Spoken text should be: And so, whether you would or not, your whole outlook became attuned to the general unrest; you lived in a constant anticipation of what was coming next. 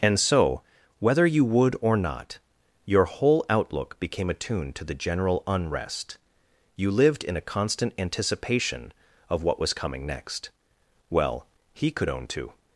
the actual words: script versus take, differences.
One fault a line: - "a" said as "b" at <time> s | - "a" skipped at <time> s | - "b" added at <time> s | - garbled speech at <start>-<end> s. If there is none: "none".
- "Well he could own to" added at 11.1 s